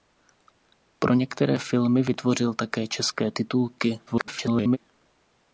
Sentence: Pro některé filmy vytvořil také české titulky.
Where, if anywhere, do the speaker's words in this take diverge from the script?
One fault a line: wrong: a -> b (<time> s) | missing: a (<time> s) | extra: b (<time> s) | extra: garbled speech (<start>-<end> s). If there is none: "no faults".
extra: garbled speech (4.1-4.8 s)